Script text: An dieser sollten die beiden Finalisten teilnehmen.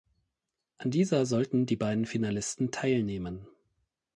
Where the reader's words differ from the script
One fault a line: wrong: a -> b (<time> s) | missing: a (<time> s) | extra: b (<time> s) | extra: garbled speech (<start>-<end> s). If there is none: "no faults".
no faults